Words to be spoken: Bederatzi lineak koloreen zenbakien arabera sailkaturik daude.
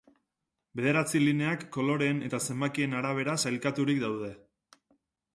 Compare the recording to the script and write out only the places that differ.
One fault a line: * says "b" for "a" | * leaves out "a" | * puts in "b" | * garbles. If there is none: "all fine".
* puts in "eta"